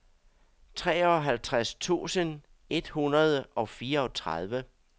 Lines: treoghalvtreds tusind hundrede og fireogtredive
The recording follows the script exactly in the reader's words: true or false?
false